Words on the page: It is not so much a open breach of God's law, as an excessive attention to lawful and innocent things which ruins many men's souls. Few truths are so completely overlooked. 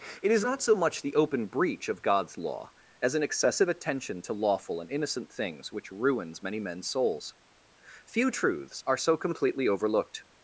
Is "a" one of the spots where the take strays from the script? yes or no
yes